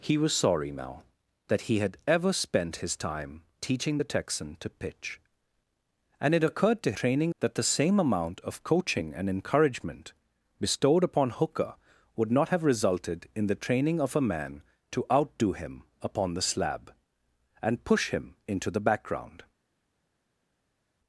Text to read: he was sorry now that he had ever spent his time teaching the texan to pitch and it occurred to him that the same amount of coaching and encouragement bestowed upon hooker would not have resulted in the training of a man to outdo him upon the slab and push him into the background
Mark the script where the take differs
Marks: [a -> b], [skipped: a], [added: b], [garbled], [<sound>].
he was sorry now that he had ever spent his time teaching the texan to pitch and it occurred to [him -> training] that the same amount of coaching and encouragement bestowed upon hooker would not have resulted in the training of a man to outdo him upon the slab and push him into the background